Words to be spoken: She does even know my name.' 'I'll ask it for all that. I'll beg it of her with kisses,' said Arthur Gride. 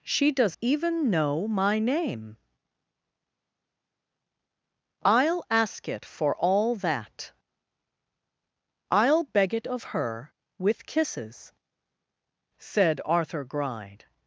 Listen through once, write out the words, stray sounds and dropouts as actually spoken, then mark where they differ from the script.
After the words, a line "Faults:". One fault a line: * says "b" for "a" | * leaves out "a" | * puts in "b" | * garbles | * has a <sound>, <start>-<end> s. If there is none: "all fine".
She does even know my name.' 'I'll ask it for all that. I'll beg it of her with kisses,' said Arthur Gride.
Faults:
all fine